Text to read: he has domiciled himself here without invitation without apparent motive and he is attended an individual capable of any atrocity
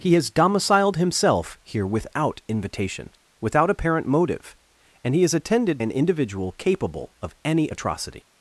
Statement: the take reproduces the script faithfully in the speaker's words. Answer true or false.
true